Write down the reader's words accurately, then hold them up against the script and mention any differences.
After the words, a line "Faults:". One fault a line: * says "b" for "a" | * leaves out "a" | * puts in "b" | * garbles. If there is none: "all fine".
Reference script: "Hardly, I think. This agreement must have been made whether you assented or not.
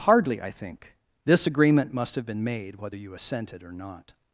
"Hardly, I think. This agreement must have been made whether you assented or not.
Faults:
all fine